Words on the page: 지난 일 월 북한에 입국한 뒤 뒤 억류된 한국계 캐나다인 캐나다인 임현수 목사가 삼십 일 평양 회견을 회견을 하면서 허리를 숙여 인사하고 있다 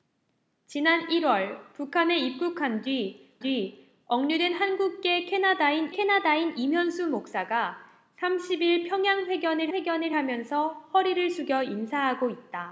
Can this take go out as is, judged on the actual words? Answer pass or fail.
pass